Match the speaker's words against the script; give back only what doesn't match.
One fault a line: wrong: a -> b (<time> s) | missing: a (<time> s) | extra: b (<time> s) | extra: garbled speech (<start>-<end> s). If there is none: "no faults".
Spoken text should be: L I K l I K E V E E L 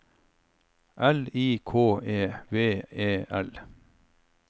missing: l I K (2.0 s)
missing: E (3.2 s)